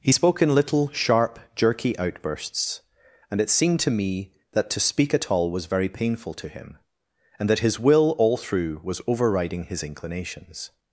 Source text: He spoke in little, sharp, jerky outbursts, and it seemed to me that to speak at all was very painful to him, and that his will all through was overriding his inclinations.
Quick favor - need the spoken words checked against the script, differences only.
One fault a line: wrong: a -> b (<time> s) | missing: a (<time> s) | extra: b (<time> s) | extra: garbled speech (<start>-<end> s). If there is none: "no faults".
no faults